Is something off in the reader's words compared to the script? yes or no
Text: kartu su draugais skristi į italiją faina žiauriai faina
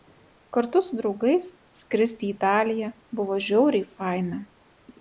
yes